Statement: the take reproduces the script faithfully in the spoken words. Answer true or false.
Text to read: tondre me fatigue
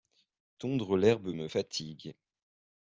false